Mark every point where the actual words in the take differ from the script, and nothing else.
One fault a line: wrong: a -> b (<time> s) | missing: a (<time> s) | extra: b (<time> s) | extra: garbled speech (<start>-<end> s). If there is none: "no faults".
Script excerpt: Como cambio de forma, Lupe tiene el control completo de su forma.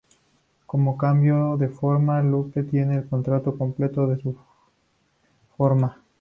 no faults